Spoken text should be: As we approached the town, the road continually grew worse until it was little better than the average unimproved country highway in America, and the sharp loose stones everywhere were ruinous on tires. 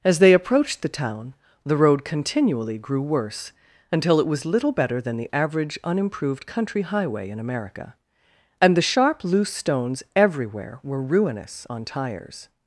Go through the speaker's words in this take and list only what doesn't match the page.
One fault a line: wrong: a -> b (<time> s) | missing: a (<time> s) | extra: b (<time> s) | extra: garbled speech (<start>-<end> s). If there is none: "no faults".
wrong: we -> they (0.2 s)